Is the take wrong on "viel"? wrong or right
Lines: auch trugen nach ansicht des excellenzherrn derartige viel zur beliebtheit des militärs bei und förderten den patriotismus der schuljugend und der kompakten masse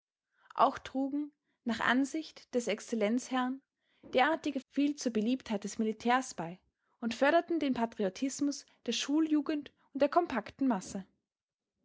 right